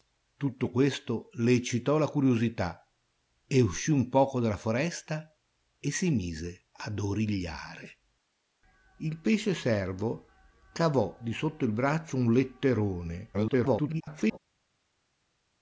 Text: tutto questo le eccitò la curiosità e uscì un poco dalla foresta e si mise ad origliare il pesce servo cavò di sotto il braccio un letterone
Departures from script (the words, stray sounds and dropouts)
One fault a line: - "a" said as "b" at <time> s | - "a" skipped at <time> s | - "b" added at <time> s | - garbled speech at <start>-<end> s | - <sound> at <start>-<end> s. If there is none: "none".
- garbled speech at 13.3-14.4 s